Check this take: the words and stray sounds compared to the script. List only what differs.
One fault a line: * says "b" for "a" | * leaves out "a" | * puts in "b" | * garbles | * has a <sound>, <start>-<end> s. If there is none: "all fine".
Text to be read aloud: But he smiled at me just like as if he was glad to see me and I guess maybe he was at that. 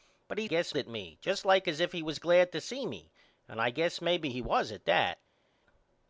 * says "guess" for "smiled"